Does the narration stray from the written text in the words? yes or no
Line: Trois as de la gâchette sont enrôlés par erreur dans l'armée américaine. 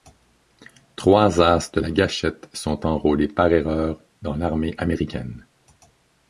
no